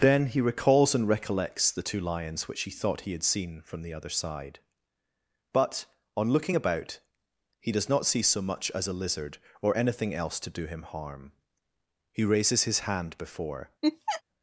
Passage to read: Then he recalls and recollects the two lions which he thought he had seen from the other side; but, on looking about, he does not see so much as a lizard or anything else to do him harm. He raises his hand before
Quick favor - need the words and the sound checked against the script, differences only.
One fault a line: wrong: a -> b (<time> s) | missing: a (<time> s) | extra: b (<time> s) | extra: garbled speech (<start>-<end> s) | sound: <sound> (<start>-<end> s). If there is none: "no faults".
sound: laugh (13.8-14.2 s)